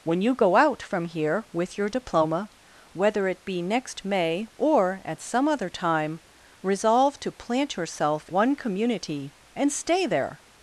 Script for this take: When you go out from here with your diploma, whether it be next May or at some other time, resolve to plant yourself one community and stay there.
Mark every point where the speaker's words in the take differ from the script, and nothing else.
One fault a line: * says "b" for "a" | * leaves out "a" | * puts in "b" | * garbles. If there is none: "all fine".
all fine